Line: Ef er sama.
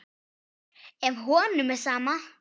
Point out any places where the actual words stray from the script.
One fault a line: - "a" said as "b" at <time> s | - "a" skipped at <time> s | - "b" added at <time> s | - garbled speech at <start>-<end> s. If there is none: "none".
- "honum" added at 1.2 s